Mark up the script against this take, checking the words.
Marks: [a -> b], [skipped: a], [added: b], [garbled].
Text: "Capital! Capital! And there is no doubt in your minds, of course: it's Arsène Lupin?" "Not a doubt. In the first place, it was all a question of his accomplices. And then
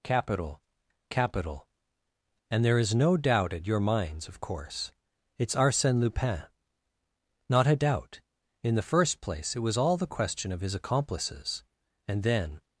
"Capital! Capital! And there is no doubt [in -> at] your minds, of course: it's Arsène Lupin?" "Not a doubt. In the first place, it was all [a -> the] question of his accomplices. And then